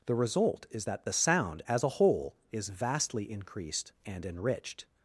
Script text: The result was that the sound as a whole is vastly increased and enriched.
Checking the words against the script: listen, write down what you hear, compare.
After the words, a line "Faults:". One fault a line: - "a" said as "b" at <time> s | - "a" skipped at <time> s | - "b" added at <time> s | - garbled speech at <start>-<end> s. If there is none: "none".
The result is that the sound as a whole is vastly increased and enriched.
Faults:
- "was" said as "is" at 0.7 s